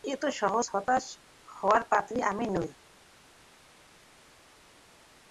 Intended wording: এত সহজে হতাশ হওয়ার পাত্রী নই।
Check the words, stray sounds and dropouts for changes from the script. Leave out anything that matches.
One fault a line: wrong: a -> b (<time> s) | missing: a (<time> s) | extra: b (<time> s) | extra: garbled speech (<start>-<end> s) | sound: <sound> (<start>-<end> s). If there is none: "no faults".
extra: আমি (2.3 s)